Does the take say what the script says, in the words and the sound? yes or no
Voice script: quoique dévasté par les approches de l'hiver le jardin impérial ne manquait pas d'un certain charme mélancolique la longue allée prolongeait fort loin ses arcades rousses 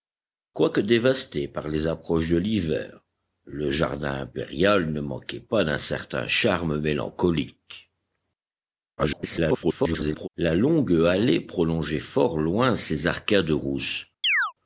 no